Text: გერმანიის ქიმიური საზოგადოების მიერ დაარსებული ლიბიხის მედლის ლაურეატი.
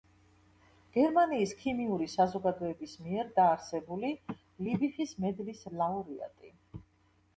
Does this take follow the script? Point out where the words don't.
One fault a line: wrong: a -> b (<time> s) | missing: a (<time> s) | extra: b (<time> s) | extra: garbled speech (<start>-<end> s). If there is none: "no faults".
no faults